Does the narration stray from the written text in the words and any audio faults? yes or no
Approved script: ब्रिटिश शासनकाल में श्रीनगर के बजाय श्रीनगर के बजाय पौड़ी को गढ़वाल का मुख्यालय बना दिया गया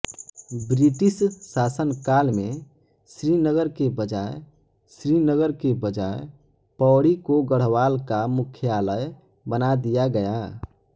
no